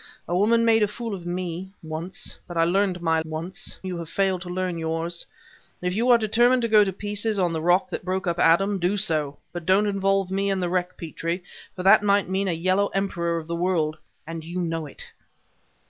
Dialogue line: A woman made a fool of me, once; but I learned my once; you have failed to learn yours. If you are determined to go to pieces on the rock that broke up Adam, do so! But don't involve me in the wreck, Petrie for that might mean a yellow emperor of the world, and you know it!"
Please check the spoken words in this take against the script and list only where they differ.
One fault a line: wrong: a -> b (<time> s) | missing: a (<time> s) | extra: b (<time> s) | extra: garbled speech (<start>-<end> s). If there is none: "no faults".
no faults